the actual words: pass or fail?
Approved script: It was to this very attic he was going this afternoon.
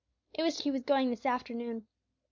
fail